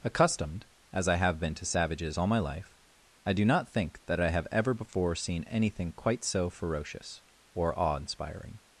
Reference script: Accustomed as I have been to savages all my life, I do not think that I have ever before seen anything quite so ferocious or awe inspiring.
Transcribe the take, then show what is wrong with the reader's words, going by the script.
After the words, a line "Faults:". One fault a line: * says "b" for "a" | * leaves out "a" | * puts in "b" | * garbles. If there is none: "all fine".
Accustomed as I have been to savages all my life, I do not think that I have ever before seen anything quite so ferocious or awe inspiring.
Faults:
all fine